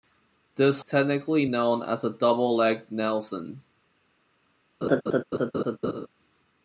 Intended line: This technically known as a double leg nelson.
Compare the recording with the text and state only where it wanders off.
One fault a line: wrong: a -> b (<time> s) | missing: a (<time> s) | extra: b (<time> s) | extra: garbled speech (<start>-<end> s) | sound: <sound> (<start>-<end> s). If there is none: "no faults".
sound: laugh (4.8-6.1 s)